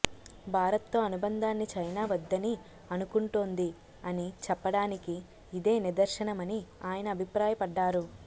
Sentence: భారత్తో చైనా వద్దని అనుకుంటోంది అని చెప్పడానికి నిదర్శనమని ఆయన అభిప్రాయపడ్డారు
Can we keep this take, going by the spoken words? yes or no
no